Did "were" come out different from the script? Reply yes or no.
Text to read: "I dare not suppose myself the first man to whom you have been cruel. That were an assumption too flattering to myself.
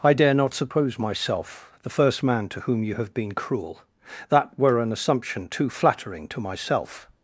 no